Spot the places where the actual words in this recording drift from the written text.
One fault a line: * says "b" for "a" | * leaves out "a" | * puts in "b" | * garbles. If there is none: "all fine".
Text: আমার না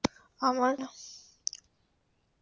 all fine